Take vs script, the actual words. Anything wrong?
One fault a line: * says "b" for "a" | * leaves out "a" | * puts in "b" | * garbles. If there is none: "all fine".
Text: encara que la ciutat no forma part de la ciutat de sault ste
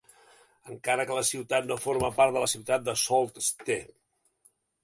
all fine